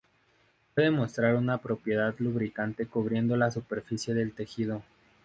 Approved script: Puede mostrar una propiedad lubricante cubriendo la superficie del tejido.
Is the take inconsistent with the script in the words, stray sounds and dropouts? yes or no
no